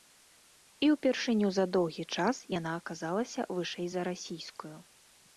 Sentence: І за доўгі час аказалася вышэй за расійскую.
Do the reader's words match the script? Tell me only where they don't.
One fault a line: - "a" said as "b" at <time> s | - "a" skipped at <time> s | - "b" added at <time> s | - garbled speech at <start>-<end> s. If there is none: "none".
- "ўпершыню" added at 0.9 s
- "яна" added at 2.6 s